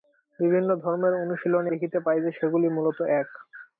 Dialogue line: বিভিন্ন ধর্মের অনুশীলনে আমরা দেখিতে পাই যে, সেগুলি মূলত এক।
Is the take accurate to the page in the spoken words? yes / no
no